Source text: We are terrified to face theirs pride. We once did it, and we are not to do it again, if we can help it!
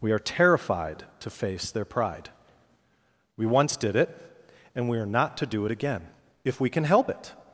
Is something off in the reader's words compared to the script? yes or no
yes